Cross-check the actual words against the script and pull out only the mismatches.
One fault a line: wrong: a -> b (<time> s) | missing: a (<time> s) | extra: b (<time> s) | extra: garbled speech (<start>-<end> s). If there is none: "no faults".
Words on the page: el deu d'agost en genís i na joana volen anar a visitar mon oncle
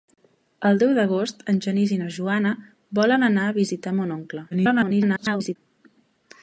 extra: garbled speech (4.5-5.6 s)